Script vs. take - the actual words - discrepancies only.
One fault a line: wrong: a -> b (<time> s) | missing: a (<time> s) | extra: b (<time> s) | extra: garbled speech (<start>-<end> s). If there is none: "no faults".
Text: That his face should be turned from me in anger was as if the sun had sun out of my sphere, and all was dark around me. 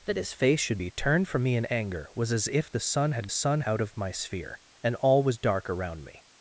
no faults